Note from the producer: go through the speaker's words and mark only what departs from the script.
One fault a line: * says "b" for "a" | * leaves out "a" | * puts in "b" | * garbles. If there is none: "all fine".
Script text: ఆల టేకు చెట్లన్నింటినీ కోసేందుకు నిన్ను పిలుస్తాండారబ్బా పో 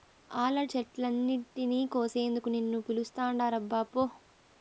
* leaves out "టేకు"